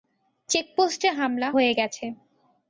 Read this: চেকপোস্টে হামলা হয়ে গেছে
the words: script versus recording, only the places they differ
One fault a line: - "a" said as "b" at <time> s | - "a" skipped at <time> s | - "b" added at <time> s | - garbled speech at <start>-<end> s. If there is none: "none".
none